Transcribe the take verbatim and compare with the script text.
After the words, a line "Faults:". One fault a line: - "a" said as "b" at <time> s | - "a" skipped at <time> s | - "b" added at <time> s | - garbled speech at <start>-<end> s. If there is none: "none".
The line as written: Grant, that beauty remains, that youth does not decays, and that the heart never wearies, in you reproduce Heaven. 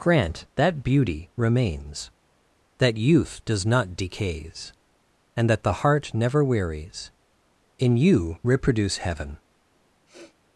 Grant, that beauty remains, that youth does not decays, and that the heart never wearies, in you reproduce Heaven.
Faults:
none